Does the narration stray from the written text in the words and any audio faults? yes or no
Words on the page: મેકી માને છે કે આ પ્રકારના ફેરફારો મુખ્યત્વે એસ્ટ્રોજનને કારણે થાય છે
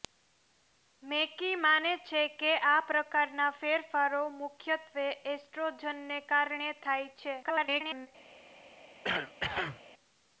yes